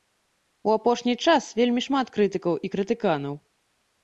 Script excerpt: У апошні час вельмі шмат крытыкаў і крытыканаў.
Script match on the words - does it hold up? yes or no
yes